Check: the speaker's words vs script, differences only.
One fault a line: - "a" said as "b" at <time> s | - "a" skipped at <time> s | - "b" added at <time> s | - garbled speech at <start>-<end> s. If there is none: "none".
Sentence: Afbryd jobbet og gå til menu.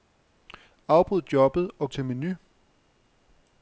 - "gå" skipped at 1.9 s